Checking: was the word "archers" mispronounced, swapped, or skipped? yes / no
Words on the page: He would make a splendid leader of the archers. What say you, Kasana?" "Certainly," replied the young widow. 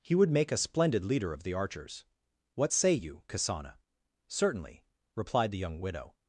no